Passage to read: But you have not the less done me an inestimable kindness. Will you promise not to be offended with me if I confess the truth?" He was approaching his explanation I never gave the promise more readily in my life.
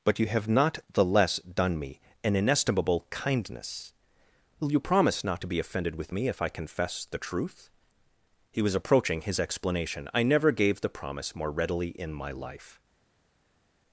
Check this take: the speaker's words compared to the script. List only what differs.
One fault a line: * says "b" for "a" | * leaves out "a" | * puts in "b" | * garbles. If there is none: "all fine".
all fine